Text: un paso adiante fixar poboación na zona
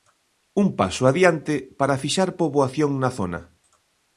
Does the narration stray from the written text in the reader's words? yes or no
yes